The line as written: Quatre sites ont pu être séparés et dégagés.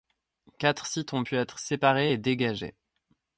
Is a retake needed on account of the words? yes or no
no